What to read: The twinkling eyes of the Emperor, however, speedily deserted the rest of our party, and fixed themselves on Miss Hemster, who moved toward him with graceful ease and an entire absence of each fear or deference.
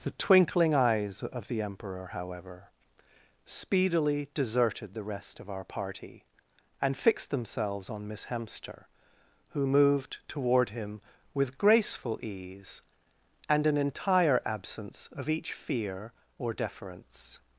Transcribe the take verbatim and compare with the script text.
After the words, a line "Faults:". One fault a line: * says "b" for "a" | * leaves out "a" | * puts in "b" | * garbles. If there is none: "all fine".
The twinkling eyes of the Emperor, however, speedily deserted the rest of our party, and fixed themselves on Miss Hemster, who moved toward him with graceful ease and an entire absence of each fear or deference.
Faults:
all fine